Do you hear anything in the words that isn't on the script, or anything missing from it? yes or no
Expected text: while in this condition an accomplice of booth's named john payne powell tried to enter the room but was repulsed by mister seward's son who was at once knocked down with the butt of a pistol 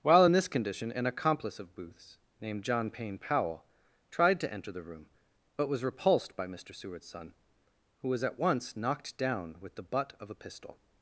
no